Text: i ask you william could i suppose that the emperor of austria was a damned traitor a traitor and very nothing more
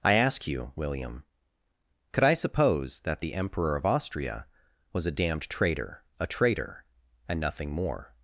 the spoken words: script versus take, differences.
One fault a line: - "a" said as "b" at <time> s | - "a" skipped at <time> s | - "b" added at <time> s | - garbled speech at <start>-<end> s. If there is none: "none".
- "very" skipped at 7.4 s